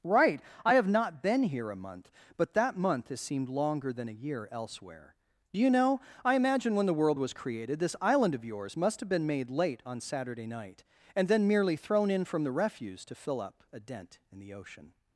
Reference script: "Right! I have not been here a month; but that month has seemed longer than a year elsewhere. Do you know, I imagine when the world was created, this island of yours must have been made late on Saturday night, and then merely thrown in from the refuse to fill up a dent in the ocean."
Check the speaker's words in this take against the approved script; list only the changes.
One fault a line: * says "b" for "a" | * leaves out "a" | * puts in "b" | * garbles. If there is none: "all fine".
all fine